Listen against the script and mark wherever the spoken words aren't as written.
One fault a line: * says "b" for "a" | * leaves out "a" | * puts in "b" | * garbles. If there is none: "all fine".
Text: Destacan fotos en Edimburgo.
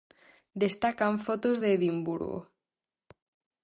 * says "de" for "en"